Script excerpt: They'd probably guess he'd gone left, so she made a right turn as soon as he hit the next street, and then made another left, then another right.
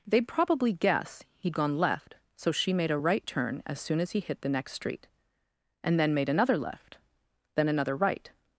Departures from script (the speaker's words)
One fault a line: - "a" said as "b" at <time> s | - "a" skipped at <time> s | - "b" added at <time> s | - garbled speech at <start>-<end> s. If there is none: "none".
none